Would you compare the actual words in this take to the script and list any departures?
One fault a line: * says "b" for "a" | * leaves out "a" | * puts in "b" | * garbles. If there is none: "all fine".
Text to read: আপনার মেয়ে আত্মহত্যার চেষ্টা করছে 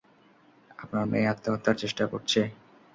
all fine